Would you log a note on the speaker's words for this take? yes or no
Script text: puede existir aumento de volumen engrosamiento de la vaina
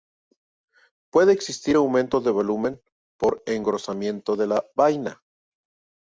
yes